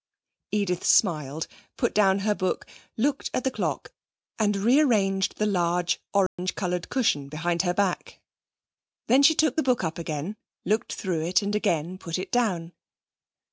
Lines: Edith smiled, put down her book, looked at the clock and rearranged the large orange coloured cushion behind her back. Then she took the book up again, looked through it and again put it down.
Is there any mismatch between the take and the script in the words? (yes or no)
no